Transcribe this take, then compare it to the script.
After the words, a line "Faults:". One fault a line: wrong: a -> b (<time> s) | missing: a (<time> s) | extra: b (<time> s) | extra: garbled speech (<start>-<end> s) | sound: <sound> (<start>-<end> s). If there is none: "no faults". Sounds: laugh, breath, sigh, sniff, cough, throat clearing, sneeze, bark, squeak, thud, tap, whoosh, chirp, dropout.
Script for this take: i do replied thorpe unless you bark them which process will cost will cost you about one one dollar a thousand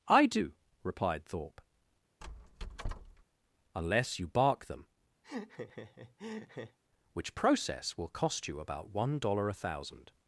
i do replied thorpe unless you bark them which process will cost you about one dollar a thousand
Faults:
sound: squeak (2.2-3.2 s)
sound: laugh (5.2-6.8 s)
missing: will cost (8.5 s)
missing: one (9.2 s)